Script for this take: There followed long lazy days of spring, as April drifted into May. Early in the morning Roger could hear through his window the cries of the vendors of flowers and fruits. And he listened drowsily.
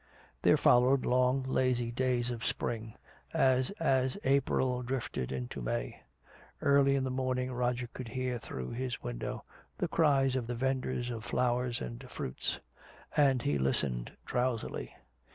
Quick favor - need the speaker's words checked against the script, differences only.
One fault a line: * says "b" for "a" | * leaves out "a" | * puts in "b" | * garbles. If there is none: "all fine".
* puts in "as"